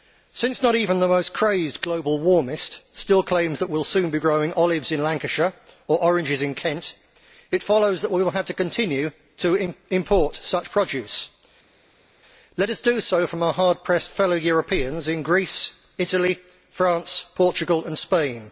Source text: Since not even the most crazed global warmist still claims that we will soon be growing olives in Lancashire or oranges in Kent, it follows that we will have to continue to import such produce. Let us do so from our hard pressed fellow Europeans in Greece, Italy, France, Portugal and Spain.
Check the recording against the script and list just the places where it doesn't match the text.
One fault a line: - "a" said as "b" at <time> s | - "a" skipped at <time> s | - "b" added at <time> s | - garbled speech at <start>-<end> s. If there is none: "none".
none